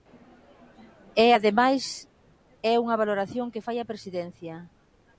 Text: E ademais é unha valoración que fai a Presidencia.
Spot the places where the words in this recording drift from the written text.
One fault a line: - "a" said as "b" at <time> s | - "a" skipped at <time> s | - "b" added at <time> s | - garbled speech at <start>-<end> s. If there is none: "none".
none